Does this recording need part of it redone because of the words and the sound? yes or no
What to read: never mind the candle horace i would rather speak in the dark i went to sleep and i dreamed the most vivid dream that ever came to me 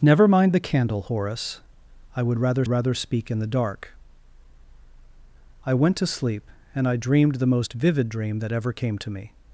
yes